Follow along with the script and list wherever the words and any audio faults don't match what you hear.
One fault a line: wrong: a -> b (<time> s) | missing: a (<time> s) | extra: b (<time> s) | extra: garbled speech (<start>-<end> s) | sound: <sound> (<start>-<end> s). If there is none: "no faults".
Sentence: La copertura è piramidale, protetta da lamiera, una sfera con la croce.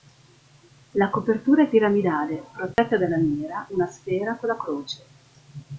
sound: dropout (2.7-2.8 s)